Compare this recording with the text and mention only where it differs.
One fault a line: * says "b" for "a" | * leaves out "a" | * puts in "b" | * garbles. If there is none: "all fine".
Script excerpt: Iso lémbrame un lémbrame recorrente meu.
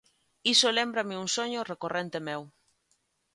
* says "soño" for "lémbrame"